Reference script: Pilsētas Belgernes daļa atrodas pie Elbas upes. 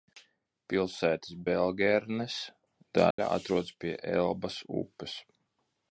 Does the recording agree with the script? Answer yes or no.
yes